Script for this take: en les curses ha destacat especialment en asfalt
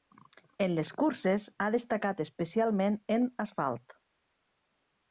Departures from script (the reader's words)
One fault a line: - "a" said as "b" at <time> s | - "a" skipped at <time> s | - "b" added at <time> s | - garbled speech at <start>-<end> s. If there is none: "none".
none